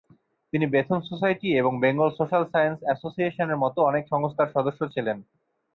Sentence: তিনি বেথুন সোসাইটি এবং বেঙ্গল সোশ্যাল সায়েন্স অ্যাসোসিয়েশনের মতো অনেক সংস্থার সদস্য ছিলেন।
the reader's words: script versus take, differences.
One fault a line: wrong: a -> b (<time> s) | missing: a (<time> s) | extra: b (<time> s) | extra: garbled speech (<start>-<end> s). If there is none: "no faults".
no faults